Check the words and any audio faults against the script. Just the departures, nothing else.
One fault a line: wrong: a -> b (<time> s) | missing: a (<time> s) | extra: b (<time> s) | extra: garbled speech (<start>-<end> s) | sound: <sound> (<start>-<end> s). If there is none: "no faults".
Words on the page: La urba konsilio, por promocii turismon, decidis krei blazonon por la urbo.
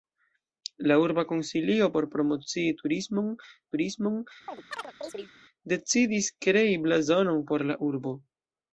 extra: turismon (3.7 s)
sound: chirp (4.5-5.3 s)